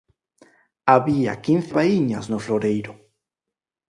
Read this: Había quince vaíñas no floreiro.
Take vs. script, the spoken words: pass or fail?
pass